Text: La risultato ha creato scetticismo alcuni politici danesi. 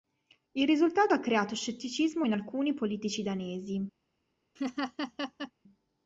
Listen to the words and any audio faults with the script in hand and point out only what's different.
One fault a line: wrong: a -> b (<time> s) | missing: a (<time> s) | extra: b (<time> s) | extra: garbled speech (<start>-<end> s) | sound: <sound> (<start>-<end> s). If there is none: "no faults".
wrong: La -> Il (0.5 s)
extra: in (2.2 s)
sound: laugh (4.6-5.5 s)